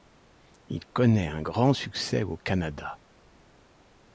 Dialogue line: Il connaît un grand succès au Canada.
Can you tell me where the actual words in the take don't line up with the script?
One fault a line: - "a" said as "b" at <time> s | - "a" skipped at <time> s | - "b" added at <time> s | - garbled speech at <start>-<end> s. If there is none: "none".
none